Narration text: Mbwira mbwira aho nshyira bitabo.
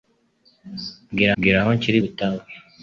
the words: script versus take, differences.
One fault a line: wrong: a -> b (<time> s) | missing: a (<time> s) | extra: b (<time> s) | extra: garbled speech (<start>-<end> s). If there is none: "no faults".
no faults